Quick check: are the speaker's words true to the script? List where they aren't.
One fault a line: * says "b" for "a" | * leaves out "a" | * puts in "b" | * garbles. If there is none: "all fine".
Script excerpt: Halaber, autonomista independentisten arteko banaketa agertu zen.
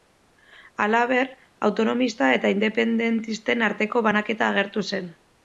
* puts in "eta"